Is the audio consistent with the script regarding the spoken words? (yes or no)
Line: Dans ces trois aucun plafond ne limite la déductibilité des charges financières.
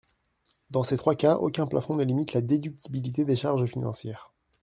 no